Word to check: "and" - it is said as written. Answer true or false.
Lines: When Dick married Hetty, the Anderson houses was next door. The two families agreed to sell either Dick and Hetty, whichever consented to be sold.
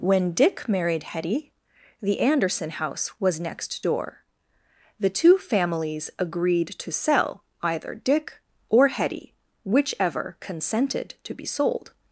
false